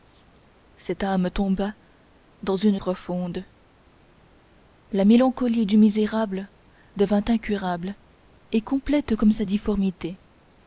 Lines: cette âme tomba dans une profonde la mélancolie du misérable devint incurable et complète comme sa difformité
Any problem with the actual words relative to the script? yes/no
no